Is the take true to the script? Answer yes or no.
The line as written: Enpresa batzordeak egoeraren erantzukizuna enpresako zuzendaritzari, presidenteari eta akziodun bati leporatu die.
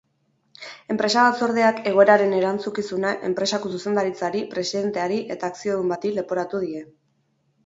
yes